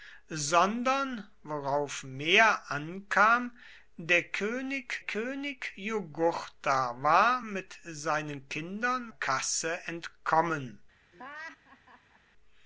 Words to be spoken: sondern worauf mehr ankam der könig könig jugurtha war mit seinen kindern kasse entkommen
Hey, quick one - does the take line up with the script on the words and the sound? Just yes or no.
no